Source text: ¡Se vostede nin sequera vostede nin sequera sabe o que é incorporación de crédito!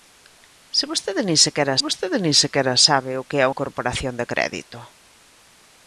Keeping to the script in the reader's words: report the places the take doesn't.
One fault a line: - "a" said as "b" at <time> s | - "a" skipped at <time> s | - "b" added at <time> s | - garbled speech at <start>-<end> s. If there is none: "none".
none